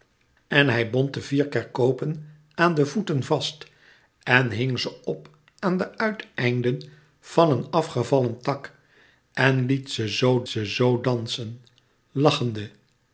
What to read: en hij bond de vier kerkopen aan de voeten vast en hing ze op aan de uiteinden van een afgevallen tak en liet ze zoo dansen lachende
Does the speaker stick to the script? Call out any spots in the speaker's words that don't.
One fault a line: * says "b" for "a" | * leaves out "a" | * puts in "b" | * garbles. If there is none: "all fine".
* puts in "ze zoo"